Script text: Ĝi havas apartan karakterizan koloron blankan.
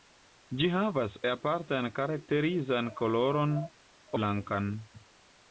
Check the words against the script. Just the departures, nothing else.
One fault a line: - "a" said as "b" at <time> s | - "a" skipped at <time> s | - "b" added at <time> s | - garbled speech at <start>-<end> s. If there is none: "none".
none